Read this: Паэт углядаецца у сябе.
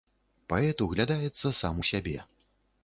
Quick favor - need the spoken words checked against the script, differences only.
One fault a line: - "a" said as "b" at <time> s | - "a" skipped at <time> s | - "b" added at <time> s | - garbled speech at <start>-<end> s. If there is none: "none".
- "сам" added at 1.6 s